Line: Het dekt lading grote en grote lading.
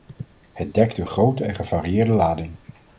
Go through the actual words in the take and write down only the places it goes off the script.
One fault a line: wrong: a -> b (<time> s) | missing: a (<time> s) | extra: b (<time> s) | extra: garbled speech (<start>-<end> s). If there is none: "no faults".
wrong: lading -> een (1.0 s)
wrong: grote -> gevarieerde (1.5 s)